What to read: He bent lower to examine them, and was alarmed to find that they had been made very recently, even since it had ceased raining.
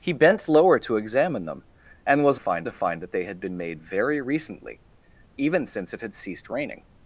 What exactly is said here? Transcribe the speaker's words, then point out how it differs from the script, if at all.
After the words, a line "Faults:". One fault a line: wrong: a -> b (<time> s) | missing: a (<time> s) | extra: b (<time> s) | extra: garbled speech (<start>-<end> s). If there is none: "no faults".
He bent lower to examine them, and was find to find that they had been made very recently, even since it had ceased raining.
Faults:
wrong: alarmed -> find (2.4 s)